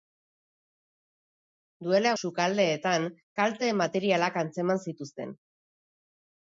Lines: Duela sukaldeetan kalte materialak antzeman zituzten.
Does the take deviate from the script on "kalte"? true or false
false